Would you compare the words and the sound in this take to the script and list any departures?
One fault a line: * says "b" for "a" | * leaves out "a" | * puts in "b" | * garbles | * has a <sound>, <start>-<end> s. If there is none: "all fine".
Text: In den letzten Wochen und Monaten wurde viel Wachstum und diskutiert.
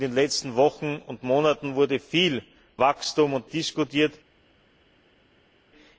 all fine